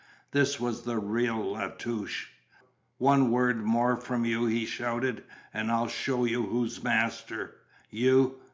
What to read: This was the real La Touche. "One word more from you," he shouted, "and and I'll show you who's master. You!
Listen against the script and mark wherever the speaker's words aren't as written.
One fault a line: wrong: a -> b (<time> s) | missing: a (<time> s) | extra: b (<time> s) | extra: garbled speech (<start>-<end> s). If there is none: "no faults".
missing: and (5.7 s)